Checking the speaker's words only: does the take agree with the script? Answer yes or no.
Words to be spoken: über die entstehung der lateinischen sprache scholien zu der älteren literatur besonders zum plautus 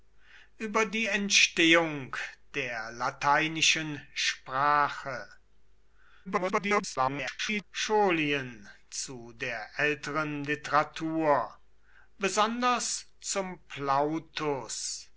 no